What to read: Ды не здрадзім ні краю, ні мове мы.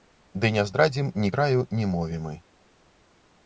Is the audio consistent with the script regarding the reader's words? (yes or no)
yes